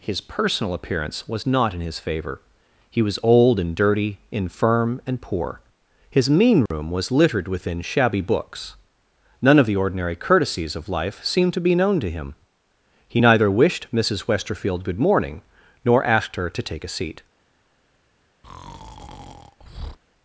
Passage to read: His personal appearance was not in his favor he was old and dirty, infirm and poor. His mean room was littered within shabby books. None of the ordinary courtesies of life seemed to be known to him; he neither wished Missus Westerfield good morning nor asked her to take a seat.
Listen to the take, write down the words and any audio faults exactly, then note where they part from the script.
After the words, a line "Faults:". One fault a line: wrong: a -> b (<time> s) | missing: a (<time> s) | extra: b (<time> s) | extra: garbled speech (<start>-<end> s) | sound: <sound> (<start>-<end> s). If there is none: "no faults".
His personal appearance was not in his favor he was old and dirty, infirm and poor. His mean room was littered within shabby books. None of the ordinary courtesies of life seemed to be known to him; he neither wished Missus Westerfield good morning nor asked her to take a seat.
Faults:
sound: dropout (6.7-6.7 s)
sound: breath (18.4-20.0 s)